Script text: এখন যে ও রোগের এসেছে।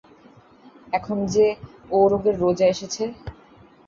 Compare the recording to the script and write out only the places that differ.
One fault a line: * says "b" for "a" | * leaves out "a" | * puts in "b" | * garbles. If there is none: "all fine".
* puts in "রোজা"